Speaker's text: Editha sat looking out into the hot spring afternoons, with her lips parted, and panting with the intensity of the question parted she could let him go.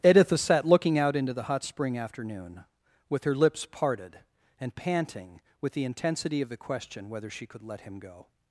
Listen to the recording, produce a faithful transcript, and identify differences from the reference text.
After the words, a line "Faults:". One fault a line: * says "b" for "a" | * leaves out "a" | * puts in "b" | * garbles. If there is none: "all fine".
Editha sat looking out into the hot spring afternoon, with her lips parted, and panting with the intensity of the question whether she could let him go.
Faults:
* says "afternoon" for "afternoons"
* says "whether" for "parted"